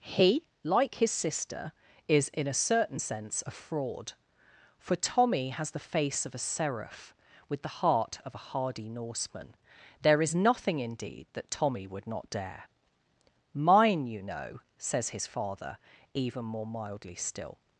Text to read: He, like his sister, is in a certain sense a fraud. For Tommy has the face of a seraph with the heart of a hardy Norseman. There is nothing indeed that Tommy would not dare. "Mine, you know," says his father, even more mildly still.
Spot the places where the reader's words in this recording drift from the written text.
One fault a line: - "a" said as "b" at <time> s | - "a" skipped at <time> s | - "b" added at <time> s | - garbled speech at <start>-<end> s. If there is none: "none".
none